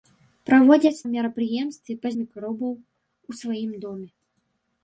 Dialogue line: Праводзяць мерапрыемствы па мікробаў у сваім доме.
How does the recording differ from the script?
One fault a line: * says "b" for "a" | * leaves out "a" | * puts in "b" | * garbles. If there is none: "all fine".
all fine